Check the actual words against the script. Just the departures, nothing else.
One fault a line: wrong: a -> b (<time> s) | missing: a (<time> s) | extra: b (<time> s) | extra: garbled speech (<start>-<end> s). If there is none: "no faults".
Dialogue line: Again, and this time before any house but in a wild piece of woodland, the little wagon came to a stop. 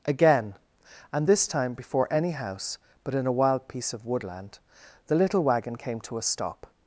no faults